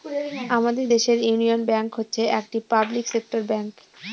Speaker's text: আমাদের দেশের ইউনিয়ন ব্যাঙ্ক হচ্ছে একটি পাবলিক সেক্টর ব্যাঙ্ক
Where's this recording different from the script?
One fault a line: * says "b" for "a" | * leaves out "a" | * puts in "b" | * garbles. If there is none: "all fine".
all fine